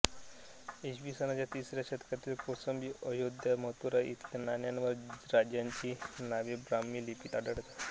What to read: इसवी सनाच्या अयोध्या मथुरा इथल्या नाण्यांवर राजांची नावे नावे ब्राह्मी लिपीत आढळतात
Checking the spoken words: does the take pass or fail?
fail